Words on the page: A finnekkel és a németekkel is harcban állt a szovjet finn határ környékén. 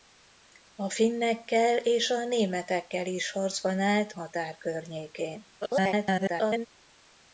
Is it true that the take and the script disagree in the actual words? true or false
true